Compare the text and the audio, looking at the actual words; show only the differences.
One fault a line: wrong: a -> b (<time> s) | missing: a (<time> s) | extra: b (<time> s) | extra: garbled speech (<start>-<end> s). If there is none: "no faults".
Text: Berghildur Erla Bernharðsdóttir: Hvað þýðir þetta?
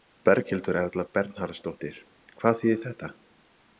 no faults